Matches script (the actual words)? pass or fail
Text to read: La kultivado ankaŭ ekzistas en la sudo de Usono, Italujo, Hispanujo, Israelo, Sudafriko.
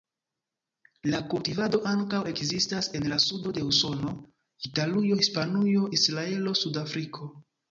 pass